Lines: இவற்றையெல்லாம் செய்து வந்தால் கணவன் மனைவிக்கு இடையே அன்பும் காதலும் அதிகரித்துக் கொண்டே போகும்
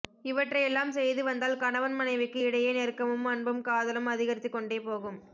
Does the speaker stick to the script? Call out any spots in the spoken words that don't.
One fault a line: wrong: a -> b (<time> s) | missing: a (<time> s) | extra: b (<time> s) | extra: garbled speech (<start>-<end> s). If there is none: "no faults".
extra: நெருக்கமும் (2.7 s)